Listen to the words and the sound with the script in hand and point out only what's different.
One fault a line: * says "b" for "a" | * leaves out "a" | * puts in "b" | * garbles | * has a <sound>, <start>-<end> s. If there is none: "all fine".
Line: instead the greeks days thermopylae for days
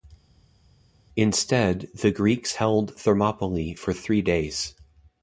* says "held" for "days"
* puts in "three"